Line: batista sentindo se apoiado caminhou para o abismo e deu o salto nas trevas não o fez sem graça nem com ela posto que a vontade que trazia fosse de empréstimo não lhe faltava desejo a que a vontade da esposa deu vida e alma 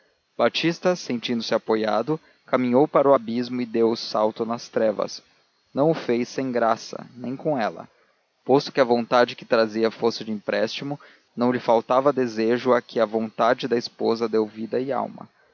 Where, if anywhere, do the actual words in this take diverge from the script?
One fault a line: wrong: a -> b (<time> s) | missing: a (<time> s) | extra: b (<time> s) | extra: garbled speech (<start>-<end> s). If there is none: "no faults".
no faults